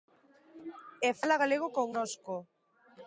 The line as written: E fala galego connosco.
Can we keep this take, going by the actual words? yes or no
yes